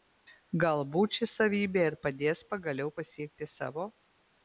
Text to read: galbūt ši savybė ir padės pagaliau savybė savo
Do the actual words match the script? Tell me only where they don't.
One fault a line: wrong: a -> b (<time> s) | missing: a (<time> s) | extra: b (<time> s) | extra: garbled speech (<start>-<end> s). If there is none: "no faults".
wrong: savybė -> pasiekti (3.0 s)